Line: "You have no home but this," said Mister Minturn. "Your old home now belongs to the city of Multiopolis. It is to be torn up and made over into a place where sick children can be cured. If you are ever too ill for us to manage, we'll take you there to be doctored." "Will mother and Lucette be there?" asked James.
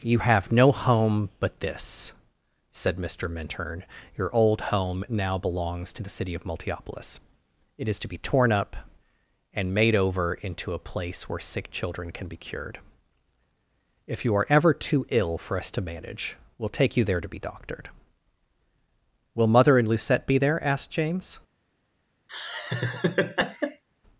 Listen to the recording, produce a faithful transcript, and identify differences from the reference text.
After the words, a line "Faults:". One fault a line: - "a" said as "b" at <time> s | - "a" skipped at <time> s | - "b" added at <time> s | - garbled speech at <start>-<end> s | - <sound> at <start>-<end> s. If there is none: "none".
"You have no home but this," said Mister Minturn. "Your old home now belongs to the city of Multiopolis. It is to be torn up and made over into a place where sick children can be cured. If you are ever too ill for us to manage, we'll take you there to be doctored." "Will mother and Lucette be there?" asked James.
Faults:
- laugh at 22.3-23.8 s